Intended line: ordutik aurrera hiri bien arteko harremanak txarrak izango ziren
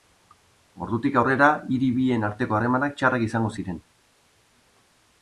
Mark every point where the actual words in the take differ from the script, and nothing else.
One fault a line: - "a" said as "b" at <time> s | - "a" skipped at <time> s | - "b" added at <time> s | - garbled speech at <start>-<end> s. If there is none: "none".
none